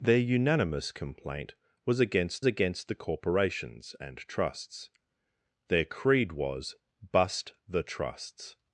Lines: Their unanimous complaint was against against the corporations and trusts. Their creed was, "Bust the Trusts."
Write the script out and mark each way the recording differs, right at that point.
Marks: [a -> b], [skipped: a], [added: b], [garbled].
Their unanimous complaint was against against the corporations and trusts. Their creed was, "Bust the Trusts."